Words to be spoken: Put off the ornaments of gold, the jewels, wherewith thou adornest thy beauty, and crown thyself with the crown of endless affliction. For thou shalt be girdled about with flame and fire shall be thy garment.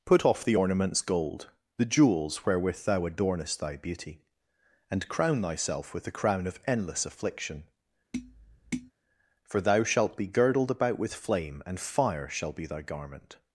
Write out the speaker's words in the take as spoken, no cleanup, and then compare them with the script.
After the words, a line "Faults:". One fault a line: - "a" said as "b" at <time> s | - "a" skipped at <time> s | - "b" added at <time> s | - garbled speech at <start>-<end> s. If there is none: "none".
Put off the ornaments gold, the jewels, wherewith thou adornest thy beauty, and crown thyself with the crown of endless affliction. For thou shalt be girdled about with flame and fire shall be thy garment.
Faults:
- "of" skipped at 1.0 s